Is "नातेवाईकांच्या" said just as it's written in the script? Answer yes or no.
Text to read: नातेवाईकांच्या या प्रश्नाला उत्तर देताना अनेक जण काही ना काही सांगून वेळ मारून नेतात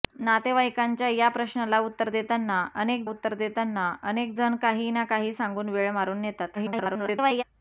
yes